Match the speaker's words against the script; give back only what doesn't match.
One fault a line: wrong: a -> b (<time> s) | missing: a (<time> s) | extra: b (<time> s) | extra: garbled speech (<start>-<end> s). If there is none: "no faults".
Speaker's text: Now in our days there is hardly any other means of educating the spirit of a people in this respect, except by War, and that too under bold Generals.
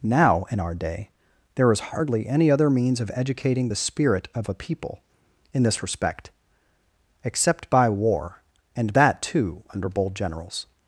wrong: days -> day (0.7 s)